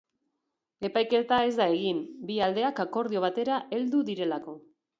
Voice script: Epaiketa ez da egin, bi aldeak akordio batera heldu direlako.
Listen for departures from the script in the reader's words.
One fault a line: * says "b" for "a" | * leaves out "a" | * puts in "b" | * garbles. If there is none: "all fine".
all fine